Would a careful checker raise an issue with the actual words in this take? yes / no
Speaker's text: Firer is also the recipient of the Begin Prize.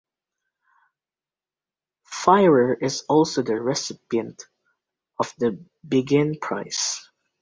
no